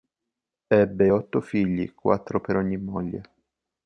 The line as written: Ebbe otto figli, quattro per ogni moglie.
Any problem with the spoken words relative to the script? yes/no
no